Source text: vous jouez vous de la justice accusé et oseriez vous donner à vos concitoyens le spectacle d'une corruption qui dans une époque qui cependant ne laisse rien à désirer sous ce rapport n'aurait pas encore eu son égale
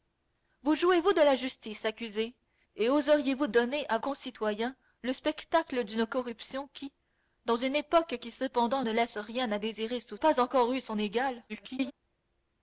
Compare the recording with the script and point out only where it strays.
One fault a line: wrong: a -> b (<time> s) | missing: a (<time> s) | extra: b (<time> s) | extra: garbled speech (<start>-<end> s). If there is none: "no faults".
missing: vos (4.0 s)
missing: ce rapport n'aurait (10.2 s)
extra: garbled speech (11.5-11.9 s)